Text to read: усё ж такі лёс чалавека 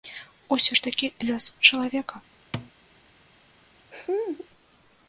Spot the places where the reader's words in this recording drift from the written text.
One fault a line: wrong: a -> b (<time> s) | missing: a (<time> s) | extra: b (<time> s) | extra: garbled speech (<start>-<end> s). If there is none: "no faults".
no faults